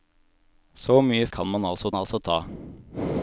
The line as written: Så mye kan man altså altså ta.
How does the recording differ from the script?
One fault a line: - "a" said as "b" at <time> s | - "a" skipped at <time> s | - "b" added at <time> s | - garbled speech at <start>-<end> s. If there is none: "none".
none